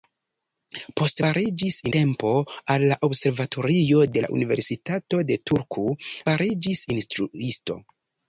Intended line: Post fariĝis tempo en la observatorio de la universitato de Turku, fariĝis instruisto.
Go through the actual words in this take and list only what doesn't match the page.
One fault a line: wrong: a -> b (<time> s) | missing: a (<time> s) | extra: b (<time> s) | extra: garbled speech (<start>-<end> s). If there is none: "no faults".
no faults